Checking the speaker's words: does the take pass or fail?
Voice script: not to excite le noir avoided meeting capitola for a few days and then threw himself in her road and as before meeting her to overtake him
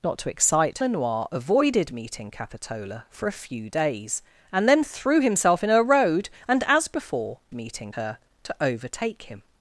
pass